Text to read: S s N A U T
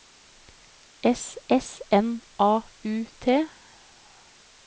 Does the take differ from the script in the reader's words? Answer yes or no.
no